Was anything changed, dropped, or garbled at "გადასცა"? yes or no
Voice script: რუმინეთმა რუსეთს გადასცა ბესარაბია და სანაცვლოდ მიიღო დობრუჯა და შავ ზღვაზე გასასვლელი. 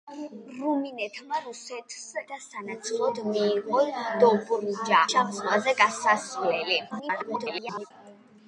yes